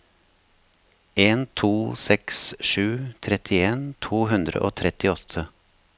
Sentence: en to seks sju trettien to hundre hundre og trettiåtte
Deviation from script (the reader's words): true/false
true